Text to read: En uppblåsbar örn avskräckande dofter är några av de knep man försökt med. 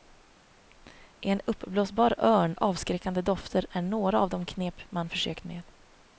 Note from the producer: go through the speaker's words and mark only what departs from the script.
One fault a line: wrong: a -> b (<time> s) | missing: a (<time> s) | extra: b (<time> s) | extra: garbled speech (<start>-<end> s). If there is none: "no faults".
no faults